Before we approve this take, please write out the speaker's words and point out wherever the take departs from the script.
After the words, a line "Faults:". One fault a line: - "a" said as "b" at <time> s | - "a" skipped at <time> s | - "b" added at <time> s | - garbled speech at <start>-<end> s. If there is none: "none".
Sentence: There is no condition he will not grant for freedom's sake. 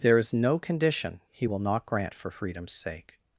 There is no condition he will not grant for freedom's sake.
Faults:
none